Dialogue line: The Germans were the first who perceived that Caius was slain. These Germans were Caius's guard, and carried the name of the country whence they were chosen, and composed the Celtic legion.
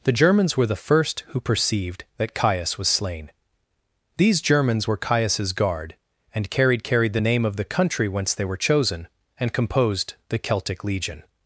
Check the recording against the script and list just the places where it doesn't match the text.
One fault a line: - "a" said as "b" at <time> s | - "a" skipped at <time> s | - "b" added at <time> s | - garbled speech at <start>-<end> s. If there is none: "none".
- "carried" added at 6.8 s